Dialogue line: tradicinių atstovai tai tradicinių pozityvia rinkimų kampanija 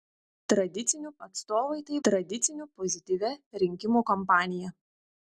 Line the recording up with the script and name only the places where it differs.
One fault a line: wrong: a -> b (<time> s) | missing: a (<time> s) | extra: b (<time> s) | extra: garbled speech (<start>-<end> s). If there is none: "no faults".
no faults